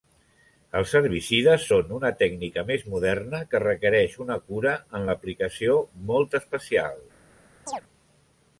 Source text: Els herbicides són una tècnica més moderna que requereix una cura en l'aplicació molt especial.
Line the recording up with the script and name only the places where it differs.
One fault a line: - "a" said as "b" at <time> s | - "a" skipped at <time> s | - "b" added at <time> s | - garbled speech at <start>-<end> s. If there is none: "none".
none